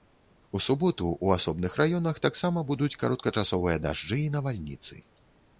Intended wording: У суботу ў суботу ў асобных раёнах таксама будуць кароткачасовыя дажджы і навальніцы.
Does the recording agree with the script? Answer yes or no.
no